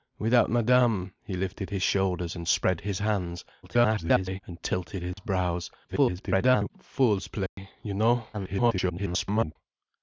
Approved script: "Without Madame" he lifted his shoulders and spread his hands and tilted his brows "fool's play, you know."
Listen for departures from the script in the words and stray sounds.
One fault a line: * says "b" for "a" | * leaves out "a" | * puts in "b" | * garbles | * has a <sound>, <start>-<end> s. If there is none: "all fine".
* garbles
* has a dropout, 5.1-5.2 s
* garbles
* has a dropout, 7.5-7.6 s
* garbles